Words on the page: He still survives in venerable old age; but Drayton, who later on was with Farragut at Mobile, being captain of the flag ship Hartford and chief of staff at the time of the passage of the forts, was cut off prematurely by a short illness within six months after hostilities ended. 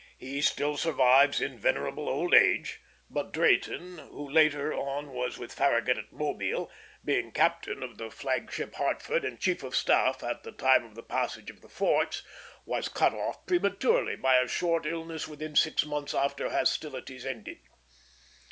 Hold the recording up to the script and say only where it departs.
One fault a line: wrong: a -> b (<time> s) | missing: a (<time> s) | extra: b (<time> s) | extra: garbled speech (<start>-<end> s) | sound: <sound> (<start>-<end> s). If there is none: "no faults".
no faults